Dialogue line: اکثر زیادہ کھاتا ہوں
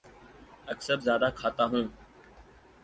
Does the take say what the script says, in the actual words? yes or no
yes